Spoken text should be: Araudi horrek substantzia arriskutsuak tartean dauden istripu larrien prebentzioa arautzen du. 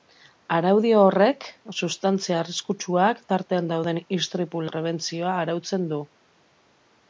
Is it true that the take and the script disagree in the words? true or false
true